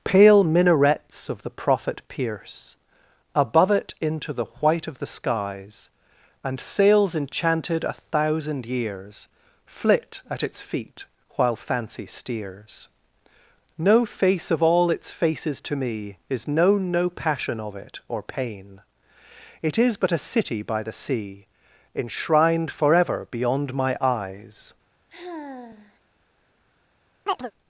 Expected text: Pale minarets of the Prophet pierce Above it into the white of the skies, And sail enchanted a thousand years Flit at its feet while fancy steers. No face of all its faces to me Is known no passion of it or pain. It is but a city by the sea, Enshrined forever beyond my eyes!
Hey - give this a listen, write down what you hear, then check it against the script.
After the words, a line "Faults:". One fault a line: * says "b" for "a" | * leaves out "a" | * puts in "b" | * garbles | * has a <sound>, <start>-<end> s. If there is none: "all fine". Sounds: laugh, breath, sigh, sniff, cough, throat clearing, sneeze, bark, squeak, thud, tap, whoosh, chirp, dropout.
Pale minarets of the Prophet pierce Above it into the white of the skies, And sails enchanted a thousand years Flit at its feet while fancy steers. No face of all its faces to me Is known no passion of it or pain. It is but a city by the sea, Enshrined forever beyond my eyes!
Faults:
* says "sails" for "sail"
* has a sigh, 25.1-26.0 s
* has a chirp, 27.3-27.5 s